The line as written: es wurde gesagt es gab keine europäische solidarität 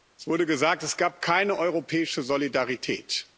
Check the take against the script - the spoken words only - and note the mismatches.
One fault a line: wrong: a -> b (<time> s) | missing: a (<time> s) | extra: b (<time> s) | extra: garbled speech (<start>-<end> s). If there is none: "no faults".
no faults